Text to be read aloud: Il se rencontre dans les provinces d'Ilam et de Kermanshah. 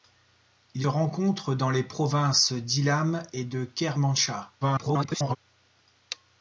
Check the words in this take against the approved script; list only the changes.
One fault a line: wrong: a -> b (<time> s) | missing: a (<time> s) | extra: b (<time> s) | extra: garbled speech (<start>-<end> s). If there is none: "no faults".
missing: se (0.9 s)
extra: garbled speech (4.6-5.4 s)